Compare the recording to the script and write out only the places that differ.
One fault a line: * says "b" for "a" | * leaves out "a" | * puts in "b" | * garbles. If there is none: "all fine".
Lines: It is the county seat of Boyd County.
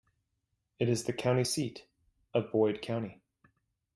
all fine